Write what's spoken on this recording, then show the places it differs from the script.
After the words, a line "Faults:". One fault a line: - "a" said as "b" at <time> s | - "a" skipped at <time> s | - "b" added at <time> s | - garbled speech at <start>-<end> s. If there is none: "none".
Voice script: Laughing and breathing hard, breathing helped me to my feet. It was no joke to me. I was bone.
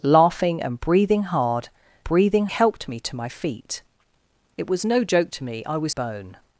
Laughing and breathing hard, breathing helped me to my feet. It was no joke to me. I was bone.
Faults:
none